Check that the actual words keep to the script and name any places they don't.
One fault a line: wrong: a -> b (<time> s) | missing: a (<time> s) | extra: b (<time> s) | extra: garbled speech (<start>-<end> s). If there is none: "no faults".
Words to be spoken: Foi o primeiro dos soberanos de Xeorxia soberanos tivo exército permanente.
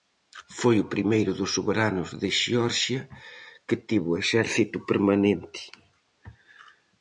wrong: soberanos -> que (3.7 s)